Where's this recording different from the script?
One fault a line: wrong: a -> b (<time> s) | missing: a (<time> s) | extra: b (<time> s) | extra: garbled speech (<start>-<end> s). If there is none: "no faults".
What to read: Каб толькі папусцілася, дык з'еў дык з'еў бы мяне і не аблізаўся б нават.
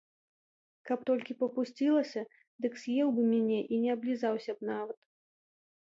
missing: дык з'еў (3.1 s)